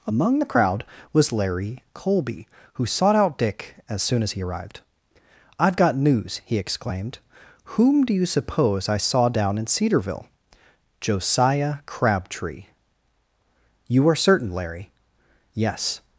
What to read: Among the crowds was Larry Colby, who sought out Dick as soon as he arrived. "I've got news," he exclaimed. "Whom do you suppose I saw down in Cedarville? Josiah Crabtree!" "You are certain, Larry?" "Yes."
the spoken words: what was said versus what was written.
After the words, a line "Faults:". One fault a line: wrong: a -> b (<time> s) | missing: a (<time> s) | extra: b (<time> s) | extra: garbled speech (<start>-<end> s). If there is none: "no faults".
Among the crowd was Larry Colby, who sought out Dick as soon as he arrived. "I've got news," he exclaimed. "Whom do you suppose I saw down in Cedarville? Josiah Crabtree!" "You are certain, Larry?" "Yes."
Faults:
wrong: crowds -> crowd (0.5 s)